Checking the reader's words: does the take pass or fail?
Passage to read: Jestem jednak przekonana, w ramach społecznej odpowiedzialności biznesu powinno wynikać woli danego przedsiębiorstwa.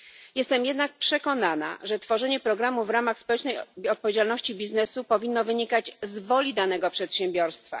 fail